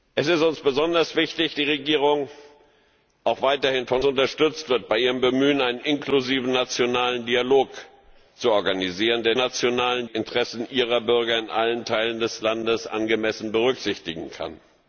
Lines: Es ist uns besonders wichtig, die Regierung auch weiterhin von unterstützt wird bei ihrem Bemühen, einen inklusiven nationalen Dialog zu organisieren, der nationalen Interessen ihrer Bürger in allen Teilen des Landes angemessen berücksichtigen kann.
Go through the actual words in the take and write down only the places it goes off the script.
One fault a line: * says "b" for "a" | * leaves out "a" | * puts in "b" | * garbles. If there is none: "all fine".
all fine